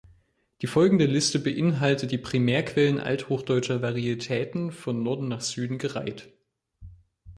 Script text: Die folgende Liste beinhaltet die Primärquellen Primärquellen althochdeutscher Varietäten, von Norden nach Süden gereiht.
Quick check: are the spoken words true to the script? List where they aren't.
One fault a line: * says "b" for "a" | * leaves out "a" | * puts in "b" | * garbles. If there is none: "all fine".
* leaves out "Primärquellen"